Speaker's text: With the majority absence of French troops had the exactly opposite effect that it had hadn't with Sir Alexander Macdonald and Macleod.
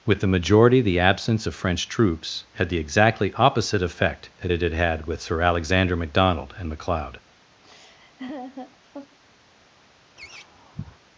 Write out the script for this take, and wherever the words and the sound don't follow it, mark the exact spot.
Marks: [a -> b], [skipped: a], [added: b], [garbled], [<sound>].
With the majority [added: the] absence of French troops had the exactly opposite effect that it had [hadn't -> had] with Sir Alexander Macdonald and Macleod. [laugh] [laugh]